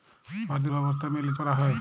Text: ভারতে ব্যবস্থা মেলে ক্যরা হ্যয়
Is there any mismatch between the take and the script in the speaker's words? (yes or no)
no